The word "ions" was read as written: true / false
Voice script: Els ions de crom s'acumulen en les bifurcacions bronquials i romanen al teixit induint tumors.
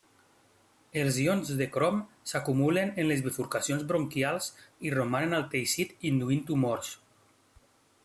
true